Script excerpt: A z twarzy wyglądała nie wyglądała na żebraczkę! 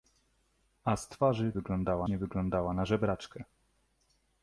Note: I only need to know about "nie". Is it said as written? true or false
true